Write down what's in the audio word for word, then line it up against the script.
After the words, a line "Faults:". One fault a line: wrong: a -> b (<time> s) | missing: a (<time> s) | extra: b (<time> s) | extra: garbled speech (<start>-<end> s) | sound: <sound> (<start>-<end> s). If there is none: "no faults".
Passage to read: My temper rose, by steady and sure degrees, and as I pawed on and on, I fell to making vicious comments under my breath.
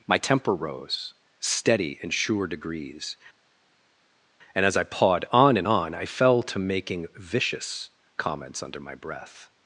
My temper rose, steady and sure degrees, and as I pawed on and on, I fell to making vicious comments under my breath.
Faults:
missing: by (1.1 s)